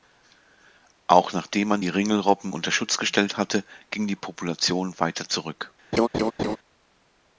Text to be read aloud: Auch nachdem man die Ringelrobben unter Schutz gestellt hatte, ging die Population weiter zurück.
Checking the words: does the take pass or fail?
pass